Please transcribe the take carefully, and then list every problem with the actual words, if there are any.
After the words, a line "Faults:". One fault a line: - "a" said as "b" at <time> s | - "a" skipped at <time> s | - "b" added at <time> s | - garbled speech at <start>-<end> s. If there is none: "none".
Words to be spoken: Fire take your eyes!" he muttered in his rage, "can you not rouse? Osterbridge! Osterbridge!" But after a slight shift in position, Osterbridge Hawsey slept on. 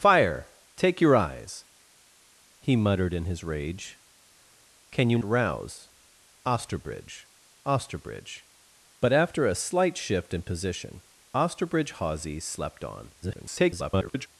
Fire take your eyes!" he muttered in his rage, "can you rouse? Osterbridge! Osterbridge!" But after a slight shift in position, Osterbridge Hawsey slept on. [garbled]
Faults:
- "not" skipped at 5.2 s
- garbled speech at 13.2-14.3 s